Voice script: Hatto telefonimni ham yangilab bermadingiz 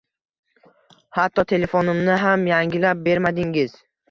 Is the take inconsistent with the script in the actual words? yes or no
no